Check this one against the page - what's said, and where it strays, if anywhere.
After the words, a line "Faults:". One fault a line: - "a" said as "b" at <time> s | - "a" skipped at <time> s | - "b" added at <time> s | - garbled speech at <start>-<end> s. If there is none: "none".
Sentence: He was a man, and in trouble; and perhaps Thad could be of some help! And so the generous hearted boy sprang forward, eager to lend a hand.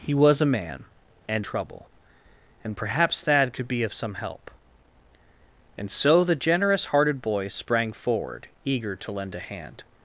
He was a man, and trouble; and perhaps Thad could be of some help! And so the generous hearted boy sprang forward, eager to lend a hand.
Faults:
- "in" skipped at 1.4 s